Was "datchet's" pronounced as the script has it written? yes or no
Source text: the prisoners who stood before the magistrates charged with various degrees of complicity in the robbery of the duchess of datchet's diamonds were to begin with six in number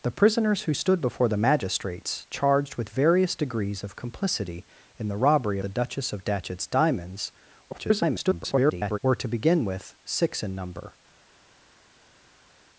yes